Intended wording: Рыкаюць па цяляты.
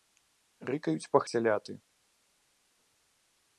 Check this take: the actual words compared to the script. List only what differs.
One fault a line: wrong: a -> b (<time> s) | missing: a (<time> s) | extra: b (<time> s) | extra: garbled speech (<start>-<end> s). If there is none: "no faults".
no faults